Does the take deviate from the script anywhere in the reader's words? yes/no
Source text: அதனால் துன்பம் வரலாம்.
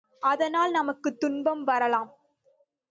yes